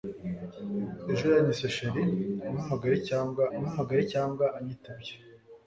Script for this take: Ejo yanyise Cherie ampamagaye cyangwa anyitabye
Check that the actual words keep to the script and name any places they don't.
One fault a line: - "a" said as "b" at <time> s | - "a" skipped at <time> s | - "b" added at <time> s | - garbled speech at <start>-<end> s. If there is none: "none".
- "ampamagaye cyangwa" added at 3.6 s